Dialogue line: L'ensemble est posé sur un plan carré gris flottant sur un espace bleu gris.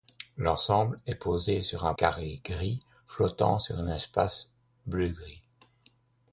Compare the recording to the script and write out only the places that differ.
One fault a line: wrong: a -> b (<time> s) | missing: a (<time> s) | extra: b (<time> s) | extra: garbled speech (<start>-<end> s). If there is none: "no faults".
missing: plan (1.9 s)